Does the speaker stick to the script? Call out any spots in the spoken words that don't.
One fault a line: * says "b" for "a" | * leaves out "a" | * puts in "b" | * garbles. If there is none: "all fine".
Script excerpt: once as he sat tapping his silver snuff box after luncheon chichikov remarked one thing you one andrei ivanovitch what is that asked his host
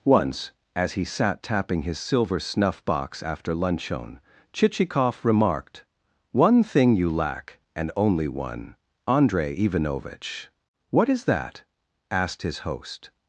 * puts in "lack and only"